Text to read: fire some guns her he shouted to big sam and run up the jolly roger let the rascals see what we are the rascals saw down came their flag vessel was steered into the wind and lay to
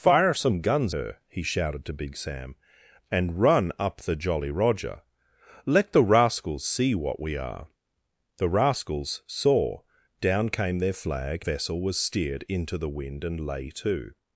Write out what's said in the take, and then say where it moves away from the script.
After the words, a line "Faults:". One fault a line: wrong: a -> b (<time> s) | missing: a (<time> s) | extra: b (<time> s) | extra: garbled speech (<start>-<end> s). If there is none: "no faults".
fire some guns her he shouted to big sam and run up the jolly roger let the rascals see what we are the rascals saw down came their flag vessel was steered into the wind and lay to
Faults:
no faults